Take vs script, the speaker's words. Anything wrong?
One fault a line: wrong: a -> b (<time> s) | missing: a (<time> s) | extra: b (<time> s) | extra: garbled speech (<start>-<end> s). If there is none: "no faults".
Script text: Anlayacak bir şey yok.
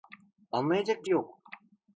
missing: şey (1.1 s)